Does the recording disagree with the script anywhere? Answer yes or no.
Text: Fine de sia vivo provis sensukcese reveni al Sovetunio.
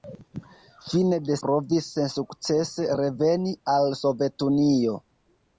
yes